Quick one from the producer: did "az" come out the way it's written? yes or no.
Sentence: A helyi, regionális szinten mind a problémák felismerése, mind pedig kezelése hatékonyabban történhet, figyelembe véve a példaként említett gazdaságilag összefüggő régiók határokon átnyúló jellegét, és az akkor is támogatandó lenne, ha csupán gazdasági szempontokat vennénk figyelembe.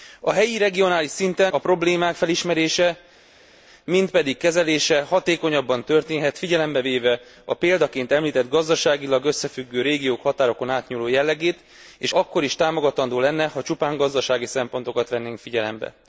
no